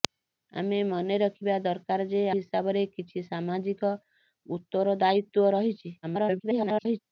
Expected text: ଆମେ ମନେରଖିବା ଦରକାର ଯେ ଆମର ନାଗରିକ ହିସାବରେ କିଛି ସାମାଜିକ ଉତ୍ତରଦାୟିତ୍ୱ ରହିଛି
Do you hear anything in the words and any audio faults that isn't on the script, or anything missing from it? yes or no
yes